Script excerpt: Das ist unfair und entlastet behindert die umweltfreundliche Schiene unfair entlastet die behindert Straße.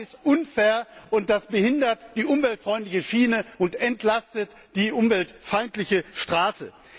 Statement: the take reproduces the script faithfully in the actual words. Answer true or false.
false